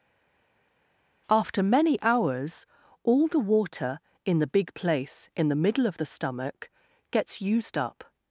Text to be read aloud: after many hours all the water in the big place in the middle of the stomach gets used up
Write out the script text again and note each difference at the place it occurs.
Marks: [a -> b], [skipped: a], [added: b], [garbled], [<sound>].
after many hours all the water in the big place in the middle of the stomach gets used up